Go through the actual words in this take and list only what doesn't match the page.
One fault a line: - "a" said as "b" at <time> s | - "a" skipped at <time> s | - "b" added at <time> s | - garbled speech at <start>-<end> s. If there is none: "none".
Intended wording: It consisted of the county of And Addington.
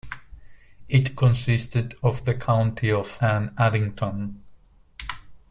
none